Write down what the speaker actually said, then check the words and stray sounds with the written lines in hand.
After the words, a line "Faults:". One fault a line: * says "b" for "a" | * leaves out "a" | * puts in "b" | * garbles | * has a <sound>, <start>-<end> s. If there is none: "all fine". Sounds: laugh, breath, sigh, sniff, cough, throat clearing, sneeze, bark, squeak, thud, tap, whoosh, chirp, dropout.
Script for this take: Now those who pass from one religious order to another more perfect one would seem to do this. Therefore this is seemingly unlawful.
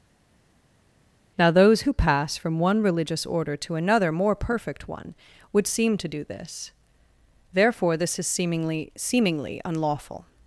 Now those who pass from one religious order to another more perfect one would seem to do this. Therefore this is seemingly seemingly unlawful.
Faults:
* puts in "seemingly"